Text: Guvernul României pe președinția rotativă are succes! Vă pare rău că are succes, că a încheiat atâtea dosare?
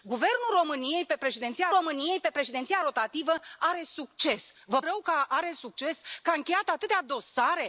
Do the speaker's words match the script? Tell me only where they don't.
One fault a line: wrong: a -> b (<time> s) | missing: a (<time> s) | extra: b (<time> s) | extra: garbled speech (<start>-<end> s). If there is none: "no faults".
extra: României pe președinția (1.8 s)
missing: pare (4.8 s)